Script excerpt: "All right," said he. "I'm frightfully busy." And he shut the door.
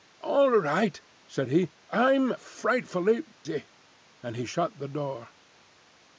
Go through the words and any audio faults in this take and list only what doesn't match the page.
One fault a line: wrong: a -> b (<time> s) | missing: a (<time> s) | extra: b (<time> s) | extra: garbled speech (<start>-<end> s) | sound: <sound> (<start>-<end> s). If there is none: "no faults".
sound: dropout (3.3-3.5 s)